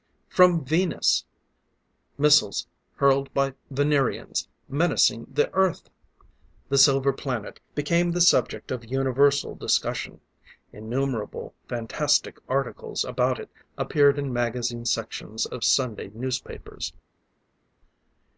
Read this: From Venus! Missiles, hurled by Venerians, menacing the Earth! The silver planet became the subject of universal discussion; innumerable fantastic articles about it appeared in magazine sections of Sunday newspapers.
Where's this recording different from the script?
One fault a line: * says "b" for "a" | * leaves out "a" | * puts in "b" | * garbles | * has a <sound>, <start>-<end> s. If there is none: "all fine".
all fine